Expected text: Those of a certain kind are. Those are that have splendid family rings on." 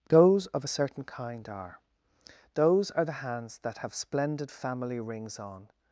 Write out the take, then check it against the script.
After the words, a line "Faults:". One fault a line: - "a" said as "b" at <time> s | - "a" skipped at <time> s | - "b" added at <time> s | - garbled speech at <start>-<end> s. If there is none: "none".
Those of a certain kind are. Those are the hands that have splendid family rings on."
Faults:
- "the hands" added at 3.1 s